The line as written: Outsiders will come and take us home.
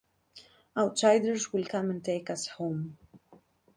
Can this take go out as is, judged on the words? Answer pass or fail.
pass